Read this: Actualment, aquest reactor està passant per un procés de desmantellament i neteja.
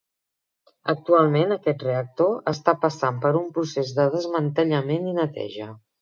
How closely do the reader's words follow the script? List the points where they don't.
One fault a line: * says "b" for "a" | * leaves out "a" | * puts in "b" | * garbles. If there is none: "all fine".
all fine